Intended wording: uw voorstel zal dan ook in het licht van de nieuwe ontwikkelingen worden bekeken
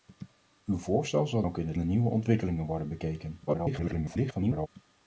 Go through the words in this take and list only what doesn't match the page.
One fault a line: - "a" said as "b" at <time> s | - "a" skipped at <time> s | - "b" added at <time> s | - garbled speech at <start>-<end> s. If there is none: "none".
- "dan" skipped at 1.4 s
- "licht van" skipped at 1.8 s
- garbled speech at 3.5-4.7 s